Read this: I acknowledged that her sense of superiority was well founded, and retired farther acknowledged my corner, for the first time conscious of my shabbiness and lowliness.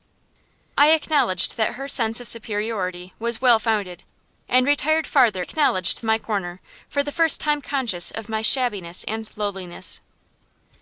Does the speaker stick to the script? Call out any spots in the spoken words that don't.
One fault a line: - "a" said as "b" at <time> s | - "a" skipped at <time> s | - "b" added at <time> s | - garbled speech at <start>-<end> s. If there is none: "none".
none